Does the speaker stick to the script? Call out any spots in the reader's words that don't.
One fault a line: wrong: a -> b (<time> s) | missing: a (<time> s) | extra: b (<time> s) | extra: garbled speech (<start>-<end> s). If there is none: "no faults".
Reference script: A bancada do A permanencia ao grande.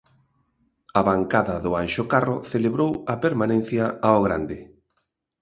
extra: Anxo Carro celebrou (1.8 s)